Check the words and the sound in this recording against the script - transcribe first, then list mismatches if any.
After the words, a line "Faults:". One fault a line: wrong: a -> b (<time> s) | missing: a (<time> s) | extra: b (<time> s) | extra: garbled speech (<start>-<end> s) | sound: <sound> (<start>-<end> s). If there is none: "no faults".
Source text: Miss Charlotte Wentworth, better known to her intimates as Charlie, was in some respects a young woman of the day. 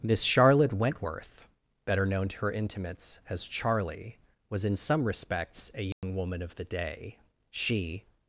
Miss Charlotte Wentworth, better known to her intimates as Charlie, was in some respects a young woman of the day. She
Faults:
sound: dropout (5.9-6.0 s)
extra: She (7.5 s)